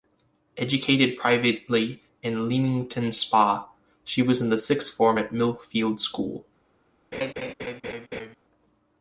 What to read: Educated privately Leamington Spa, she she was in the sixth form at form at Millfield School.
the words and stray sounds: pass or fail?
fail